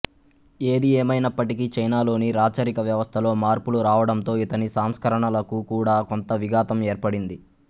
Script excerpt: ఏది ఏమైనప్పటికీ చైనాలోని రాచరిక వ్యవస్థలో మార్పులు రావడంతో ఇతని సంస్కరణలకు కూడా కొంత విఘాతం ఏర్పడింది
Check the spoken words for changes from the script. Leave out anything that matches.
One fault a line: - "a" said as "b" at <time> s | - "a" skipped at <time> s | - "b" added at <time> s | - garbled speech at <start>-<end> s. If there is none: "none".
none